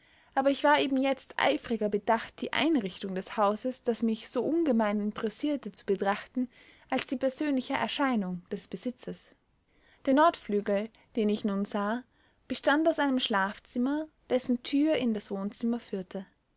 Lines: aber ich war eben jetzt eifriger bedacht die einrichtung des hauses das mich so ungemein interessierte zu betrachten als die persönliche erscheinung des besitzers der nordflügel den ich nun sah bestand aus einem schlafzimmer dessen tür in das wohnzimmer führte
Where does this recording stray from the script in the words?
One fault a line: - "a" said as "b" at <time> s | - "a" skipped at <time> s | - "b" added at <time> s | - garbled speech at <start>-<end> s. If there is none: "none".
none